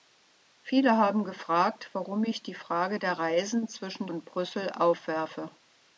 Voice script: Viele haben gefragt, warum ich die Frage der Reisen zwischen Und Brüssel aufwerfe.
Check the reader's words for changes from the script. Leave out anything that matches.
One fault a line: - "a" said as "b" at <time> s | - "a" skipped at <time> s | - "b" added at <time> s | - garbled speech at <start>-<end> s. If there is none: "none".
none